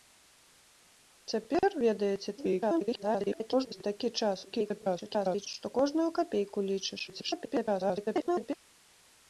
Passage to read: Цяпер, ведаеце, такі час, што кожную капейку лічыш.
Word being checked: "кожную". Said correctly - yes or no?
yes